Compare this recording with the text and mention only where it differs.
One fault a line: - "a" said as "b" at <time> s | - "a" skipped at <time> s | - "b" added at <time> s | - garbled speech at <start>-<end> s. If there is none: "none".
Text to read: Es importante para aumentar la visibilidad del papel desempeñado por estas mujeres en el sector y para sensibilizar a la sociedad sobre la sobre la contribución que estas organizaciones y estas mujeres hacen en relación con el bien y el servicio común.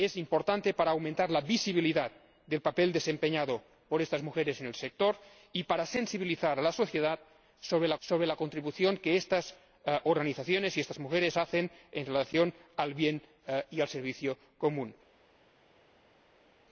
none